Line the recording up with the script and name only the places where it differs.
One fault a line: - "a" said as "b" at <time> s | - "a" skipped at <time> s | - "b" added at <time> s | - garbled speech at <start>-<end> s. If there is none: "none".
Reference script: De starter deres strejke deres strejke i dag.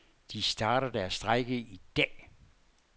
- "deres strejke" skipped at 1.6 s